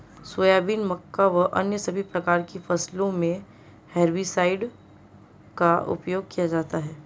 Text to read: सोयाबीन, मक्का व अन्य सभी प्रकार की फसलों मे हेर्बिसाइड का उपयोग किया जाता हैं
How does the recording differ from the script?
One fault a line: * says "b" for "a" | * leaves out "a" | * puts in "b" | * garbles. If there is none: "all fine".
all fine